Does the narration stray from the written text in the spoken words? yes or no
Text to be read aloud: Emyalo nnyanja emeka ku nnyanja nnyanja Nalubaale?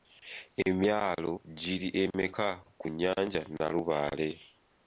yes